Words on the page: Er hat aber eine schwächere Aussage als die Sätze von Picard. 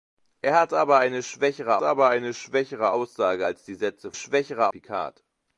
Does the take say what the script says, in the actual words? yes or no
no